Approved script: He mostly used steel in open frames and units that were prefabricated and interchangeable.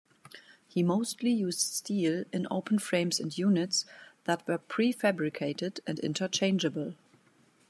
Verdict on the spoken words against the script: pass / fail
pass